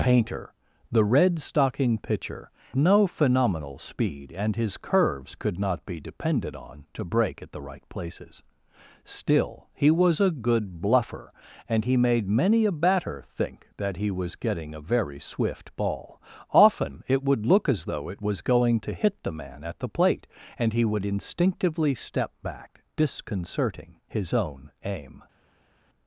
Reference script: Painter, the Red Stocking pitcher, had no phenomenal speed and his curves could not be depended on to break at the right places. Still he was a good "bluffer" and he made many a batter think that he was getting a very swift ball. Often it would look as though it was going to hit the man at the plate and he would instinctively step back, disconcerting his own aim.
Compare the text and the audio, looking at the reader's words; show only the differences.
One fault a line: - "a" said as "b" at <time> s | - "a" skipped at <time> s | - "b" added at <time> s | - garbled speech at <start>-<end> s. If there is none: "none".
- "had" skipped at 2.5 s